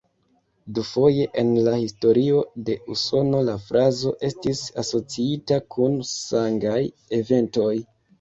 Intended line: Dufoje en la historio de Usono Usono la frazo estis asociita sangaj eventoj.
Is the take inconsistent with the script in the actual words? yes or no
yes